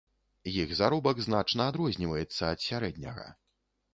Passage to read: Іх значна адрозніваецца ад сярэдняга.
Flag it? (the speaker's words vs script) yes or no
yes